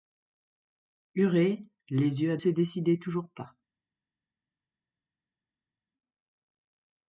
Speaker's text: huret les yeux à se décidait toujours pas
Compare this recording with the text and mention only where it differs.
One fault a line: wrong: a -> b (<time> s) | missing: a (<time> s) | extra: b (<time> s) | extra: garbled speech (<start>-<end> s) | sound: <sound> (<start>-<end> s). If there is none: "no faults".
no faults